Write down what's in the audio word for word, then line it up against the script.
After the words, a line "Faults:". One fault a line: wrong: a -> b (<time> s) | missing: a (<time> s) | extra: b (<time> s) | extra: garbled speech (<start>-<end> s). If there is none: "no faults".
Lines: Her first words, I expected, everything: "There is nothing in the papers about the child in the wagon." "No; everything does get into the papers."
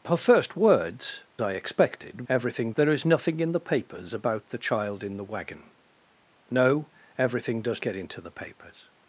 Her first words, I expected, everything: "There is nothing in the papers about the child in the wagon." "No; everything does get into the papers."
Faults:
no faults